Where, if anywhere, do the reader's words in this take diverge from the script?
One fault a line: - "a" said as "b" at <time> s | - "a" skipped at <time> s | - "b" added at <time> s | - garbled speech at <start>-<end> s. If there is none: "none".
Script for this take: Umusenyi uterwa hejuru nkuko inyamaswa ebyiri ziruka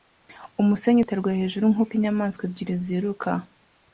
none